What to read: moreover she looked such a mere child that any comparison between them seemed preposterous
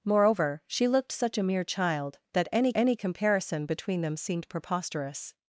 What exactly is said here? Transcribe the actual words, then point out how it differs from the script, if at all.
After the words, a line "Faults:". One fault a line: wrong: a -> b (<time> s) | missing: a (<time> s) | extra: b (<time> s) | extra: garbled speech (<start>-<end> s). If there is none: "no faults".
moreover she looked such a mere child that any any comparison between them seemed preposterous
Faults:
extra: any (2.7 s)